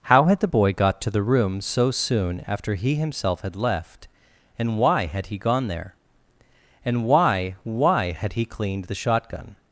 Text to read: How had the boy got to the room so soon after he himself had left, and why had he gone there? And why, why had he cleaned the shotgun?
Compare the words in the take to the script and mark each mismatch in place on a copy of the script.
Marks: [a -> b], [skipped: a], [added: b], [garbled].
How had the boy got to the room so soon after he himself had left, and why had he gone there? And why, why had he cleaned the shotgun?